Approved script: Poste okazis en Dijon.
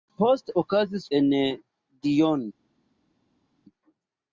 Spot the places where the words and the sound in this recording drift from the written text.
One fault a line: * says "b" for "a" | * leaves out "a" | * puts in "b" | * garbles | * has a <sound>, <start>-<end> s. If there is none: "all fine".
all fine